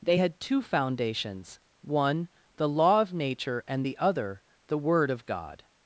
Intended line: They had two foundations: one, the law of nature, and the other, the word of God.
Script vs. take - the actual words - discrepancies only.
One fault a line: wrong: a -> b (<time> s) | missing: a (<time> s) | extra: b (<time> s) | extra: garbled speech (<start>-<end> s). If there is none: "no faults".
no faults